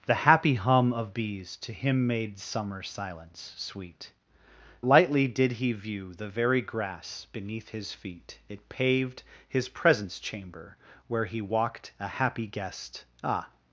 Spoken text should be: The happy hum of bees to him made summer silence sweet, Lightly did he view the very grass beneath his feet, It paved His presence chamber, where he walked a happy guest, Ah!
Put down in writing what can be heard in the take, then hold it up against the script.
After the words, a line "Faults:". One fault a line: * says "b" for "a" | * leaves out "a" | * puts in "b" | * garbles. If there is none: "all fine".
The happy hum of bees to him made summer silence sweet, Lightly did he view the very grass beneath his feet, It paved His presence chamber, where he walked a happy guest, Ah!
Faults:
all fine